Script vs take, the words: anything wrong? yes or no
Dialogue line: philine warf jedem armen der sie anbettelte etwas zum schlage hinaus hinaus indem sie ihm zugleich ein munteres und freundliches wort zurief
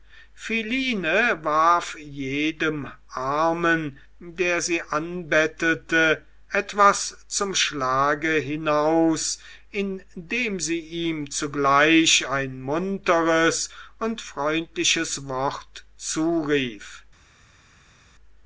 yes